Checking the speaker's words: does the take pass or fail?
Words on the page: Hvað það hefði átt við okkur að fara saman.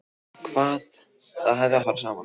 fail